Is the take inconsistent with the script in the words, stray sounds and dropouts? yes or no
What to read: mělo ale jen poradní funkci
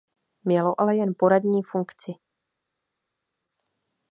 no